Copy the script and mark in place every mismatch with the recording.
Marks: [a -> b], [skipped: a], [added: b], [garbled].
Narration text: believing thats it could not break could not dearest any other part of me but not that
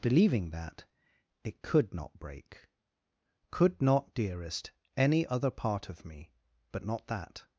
believing [thats -> that] it could not break could not dearest any other part of me but not that